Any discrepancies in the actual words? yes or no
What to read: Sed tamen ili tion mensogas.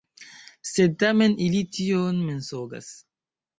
no